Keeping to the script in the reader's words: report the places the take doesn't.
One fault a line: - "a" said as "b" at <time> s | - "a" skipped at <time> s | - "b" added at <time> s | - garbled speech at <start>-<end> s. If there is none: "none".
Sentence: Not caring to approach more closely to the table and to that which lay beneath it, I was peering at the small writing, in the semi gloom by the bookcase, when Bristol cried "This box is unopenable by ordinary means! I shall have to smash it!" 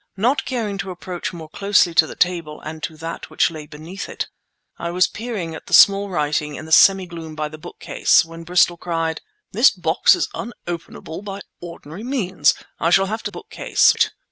- "smash" said as "bookcase" at 13.3 s